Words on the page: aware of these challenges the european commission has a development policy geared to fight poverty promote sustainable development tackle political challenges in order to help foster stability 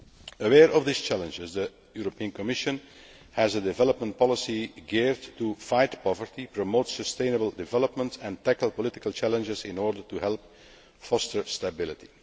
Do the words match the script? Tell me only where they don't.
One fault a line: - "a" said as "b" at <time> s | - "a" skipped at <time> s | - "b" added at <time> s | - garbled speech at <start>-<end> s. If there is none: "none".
- "and" added at 8.2 s